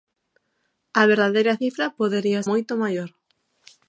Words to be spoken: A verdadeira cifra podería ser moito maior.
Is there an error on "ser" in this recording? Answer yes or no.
yes